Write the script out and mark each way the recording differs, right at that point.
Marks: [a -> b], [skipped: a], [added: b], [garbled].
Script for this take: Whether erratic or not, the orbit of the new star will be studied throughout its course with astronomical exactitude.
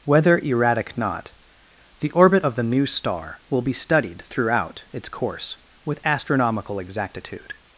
Whether erratic [skipped: or] not, the orbit of the new star will be studied throughout its course with astronomical exactitude.